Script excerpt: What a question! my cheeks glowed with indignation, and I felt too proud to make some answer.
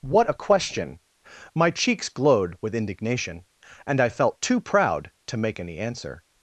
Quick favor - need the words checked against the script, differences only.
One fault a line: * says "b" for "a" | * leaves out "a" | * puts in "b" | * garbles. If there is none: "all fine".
* says "any" for "some"